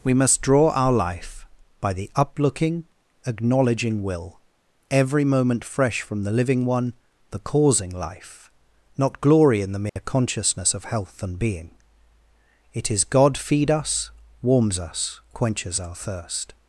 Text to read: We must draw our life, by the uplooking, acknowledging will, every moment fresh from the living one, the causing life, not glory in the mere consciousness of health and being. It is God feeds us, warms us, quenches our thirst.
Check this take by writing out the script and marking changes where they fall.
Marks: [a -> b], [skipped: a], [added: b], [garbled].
We must draw our life, by the uplooking, acknowledging will, every moment fresh from the living one, the causing life, not glory in the mere consciousness of health and being. It is God [feeds -> feed] us, warms us, quenches our thirst.